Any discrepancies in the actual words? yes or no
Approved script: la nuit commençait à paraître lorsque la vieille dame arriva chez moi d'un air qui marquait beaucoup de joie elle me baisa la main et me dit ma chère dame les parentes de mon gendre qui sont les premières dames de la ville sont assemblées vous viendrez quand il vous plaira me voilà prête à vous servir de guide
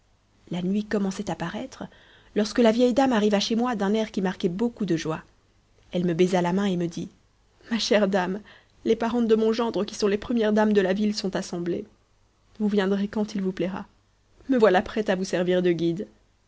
no